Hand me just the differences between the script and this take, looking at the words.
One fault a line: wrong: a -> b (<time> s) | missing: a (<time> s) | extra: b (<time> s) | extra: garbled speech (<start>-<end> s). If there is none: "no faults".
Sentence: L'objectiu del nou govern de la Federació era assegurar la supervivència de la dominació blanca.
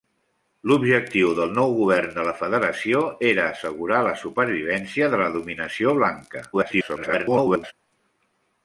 extra: garbled speech (6.5-7.7 s)